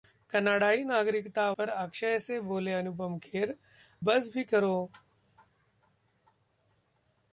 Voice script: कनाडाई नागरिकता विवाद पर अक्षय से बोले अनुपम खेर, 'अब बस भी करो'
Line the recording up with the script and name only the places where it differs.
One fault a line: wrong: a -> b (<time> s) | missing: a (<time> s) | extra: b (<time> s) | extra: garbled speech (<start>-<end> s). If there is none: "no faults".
missing: विवाद (1.4 s)
missing: अब (3.5 s)